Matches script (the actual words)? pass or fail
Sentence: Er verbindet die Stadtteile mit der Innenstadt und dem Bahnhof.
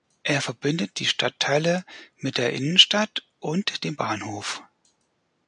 pass